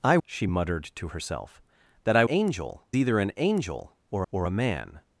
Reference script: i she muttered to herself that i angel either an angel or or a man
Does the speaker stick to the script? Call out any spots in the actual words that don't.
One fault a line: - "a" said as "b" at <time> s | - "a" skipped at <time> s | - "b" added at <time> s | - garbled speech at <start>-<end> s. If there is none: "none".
none